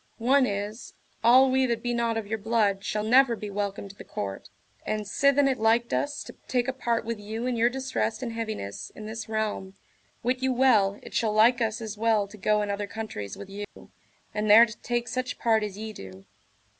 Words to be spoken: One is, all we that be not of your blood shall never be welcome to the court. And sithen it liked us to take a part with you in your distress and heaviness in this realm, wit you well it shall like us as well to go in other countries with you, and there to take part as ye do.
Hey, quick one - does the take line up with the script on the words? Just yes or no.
no